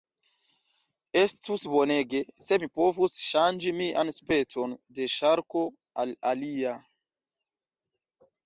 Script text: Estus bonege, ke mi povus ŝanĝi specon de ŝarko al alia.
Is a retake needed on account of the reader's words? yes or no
yes